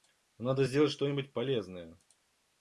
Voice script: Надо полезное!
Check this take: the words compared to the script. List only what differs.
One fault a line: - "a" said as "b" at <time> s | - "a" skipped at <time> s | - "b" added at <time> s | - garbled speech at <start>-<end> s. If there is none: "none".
- "сделать что нибудь" added at 0.6 s